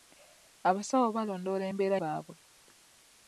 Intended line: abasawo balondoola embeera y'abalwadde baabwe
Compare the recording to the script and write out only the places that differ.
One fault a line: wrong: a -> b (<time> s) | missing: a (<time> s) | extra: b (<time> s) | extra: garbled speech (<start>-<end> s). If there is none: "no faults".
missing: y'abalwadde (2.0 s)